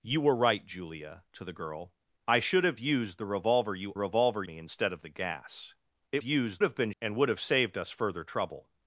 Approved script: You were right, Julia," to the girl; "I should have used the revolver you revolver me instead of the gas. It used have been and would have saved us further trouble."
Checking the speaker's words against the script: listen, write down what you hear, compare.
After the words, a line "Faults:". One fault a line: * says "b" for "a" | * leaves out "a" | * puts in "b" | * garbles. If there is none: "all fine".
You were right, Julia," to the girl; "I should have used the revolver you revolver me instead of the gas. It used have been and would have saved us further trouble."
Faults:
all fine